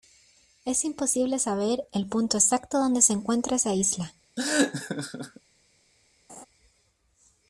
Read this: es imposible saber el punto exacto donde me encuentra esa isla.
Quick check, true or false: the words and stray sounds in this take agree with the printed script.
false